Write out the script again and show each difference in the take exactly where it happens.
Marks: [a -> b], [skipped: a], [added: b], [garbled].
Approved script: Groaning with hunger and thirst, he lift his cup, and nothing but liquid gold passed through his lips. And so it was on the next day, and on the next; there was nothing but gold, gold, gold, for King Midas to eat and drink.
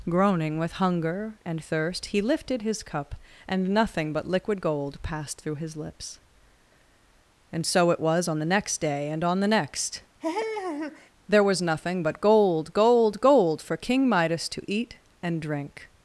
Groaning with hunger and thirst, he [lift -> lifted] his cup, and nothing but liquid gold passed through his lips. And so it was on the next day, and on the next; there was nothing but gold, gold, gold, for King Midas to eat and drink.